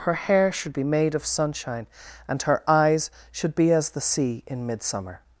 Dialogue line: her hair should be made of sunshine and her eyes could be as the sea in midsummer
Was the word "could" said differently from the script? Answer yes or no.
yes